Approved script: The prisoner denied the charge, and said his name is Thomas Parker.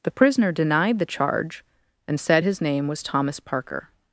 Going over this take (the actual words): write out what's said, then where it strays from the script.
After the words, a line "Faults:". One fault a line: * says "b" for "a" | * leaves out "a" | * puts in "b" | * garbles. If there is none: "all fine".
The prisoner denied the charge, and said his name was Thomas Parker.
Faults:
* says "was" for "is"